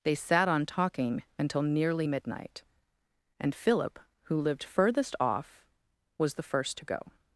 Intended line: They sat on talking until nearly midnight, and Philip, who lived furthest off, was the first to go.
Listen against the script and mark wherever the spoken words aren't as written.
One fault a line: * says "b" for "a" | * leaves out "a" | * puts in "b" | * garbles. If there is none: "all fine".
all fine